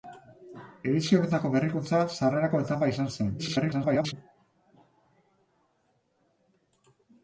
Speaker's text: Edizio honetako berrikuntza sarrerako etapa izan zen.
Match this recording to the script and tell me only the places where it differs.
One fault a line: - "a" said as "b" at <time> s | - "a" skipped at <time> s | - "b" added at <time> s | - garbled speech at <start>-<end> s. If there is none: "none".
- garbled speech at 3.4-4.1 s